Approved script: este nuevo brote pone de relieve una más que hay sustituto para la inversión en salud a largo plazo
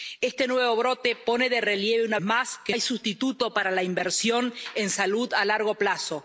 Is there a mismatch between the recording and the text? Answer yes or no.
no